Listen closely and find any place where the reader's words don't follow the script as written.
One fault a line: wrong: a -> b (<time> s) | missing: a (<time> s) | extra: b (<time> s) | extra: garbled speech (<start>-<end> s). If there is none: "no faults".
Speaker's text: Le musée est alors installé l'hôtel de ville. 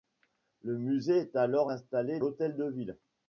no faults